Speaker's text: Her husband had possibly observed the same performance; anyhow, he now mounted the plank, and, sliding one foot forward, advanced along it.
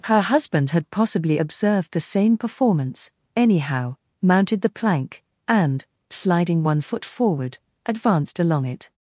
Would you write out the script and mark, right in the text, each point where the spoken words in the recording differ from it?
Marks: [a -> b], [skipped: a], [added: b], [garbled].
Her husband had possibly observed the same performance; anyhow, [skipped: he now] mounted the plank, and, sliding one foot forward, advanced along it.